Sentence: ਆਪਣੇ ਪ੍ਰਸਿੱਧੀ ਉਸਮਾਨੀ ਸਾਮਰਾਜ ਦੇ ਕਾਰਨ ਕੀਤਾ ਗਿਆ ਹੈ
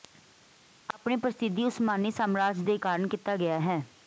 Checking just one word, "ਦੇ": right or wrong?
right